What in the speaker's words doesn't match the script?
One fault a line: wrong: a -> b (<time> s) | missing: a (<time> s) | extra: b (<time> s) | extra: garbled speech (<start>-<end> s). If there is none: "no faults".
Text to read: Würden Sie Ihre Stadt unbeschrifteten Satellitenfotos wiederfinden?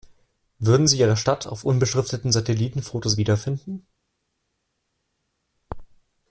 extra: auf (1.4 s)